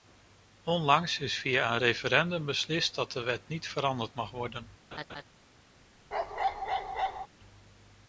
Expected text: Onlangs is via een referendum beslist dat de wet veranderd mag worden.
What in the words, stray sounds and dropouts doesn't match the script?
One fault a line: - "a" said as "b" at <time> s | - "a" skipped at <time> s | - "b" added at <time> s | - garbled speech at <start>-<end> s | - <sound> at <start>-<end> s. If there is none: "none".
- "niet" added at 3.5 s
- laugh at 4.9-5.2 s
- bark at 6.1-7.3 s